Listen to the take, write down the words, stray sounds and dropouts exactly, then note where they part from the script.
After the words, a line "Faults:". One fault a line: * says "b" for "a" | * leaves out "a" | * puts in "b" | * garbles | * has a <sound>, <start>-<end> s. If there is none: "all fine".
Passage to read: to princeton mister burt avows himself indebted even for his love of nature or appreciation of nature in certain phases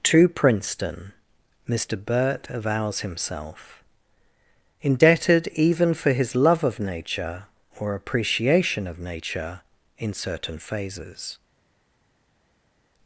to princeton mister burt avows himself indebted even for his love of nature or appreciation of nature in certain phases
Faults:
all fine